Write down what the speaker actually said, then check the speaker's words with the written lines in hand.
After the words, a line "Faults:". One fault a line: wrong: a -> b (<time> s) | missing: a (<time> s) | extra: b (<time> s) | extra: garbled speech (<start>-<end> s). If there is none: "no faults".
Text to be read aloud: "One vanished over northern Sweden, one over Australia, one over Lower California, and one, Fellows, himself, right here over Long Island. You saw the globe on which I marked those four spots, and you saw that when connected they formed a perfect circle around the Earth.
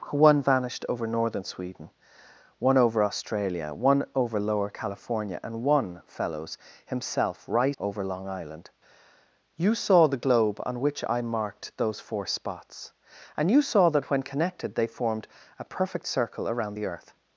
"One vanished over northern Sweden, one over Australia, one over Lower California, and one, Fellows, himself, right over Long Island. You saw the globe on which I marked those four spots, and you saw that when connected they formed a perfect circle around the Earth.
Faults:
missing: here (7.8 s)